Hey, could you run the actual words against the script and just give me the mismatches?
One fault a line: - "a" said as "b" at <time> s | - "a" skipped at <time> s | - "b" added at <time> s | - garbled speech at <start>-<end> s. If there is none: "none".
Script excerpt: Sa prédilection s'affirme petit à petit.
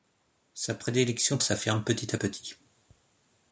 none